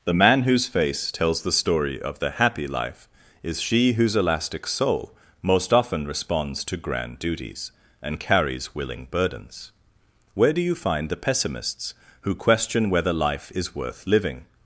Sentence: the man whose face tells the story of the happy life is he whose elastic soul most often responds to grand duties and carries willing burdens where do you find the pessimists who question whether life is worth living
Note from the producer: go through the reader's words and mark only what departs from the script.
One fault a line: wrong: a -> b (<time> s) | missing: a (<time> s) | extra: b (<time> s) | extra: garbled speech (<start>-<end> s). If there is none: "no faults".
wrong: he -> she (3.6 s)